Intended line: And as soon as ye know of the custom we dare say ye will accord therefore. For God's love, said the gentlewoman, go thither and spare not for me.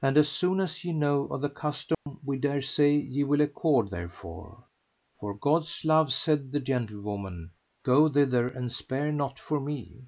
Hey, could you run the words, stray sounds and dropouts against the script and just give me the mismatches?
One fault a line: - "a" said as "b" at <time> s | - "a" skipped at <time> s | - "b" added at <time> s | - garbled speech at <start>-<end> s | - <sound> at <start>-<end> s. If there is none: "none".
- dropout at 1.9-2.1 s